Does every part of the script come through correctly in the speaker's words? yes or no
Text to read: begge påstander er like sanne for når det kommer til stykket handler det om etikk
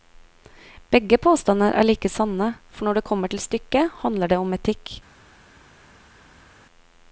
yes